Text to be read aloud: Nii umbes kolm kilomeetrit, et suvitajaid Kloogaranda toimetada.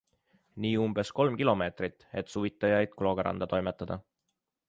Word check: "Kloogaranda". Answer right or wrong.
right